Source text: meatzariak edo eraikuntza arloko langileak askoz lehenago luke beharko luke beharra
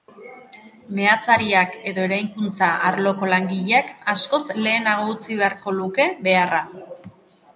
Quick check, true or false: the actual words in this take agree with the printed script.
false